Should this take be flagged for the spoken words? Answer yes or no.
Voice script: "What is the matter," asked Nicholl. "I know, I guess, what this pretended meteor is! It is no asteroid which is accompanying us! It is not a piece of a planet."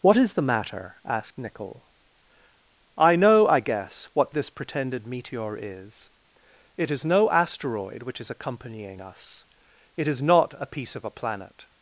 no